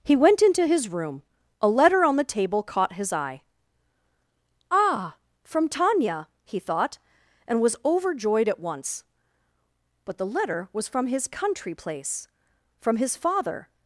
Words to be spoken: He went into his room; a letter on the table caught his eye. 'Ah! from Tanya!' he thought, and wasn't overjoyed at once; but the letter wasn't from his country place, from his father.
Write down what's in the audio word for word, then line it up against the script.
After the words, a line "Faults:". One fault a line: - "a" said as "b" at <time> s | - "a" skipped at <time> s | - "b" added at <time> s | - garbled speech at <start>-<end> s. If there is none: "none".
He went into his room; a letter on the table caught his eye. 'Ah! from Tanya!' he thought, and was overjoyed at once; but the letter was from his country place, from his father.
Faults:
- "wasn't" said as "was" at 7.6 s
- "wasn't" said as "was" at 10.7 s